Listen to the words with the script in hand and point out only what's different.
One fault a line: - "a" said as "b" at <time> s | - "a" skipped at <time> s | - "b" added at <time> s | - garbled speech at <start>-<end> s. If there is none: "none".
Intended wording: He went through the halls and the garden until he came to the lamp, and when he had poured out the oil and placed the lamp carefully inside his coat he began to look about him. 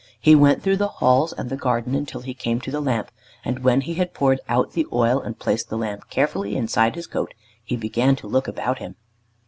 none